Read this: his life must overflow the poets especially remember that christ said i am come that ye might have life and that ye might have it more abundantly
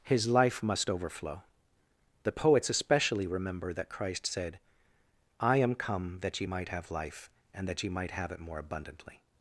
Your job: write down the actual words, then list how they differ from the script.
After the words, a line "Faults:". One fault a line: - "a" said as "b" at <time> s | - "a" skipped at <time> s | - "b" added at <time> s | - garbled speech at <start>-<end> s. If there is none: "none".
his life must overflow the poets especially remember that christ said i am come that ye might have life and that ye might have it more abundantly
Faults:
none